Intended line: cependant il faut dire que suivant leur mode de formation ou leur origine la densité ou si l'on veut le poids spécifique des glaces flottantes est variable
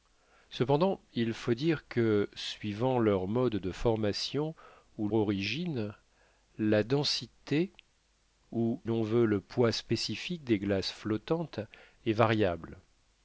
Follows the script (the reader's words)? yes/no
no